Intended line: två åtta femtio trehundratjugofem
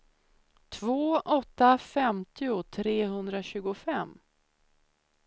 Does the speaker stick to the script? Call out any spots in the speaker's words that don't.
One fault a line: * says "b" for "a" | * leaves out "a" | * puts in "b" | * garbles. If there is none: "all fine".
all fine